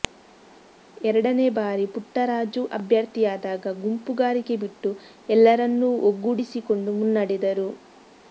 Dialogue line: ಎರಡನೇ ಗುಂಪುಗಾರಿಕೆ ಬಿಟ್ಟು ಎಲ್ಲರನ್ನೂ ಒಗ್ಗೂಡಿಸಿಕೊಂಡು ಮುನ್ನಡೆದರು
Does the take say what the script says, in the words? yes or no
no